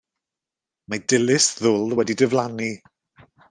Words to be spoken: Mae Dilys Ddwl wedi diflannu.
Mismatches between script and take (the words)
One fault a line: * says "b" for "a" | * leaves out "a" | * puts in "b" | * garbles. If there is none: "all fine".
all fine